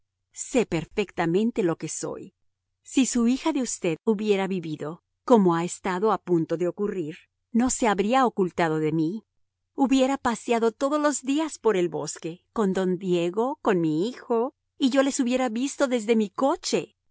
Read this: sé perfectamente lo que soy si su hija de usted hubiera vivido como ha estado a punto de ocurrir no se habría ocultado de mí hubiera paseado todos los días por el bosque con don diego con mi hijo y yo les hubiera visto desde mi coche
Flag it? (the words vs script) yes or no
no